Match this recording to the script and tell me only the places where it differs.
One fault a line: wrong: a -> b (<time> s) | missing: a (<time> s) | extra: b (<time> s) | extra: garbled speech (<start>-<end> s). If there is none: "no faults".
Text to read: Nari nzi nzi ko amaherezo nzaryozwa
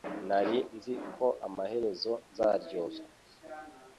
missing: nzi (0.9 s)